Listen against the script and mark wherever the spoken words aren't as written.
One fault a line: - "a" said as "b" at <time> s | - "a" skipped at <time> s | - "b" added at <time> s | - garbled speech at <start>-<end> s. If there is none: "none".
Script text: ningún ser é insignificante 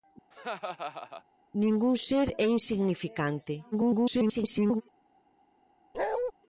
- garbled speech at 3.7-4.8 s